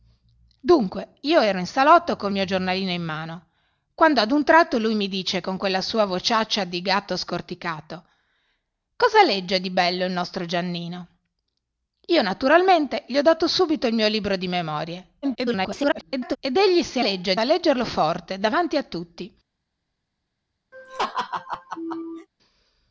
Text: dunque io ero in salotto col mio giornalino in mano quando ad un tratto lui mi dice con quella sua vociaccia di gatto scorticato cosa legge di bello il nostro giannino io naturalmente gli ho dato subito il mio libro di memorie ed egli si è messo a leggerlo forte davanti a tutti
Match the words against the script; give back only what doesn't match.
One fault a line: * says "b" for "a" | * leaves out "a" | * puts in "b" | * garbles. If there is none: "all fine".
* garbles
* says "legge" for "messo"